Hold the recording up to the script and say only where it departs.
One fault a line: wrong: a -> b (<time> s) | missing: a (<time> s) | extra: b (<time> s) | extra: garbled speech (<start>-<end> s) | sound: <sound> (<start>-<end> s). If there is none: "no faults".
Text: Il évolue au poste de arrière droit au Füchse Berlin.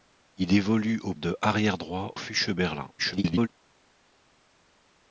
missing: poste (1.1 s)
missing: au (2.1 s)
extra: garbled speech (3.0-3.5 s)